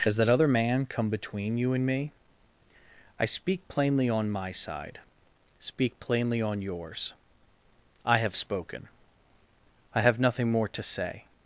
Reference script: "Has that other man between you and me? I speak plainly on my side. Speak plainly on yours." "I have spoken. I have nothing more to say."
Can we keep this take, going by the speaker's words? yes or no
no